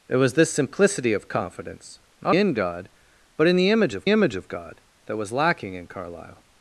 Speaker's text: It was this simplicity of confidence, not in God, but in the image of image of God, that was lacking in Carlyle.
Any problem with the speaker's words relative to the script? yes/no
no